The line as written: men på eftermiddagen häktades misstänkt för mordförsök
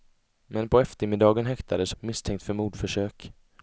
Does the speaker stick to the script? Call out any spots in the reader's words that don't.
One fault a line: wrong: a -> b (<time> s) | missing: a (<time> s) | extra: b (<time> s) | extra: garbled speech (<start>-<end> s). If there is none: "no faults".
no faults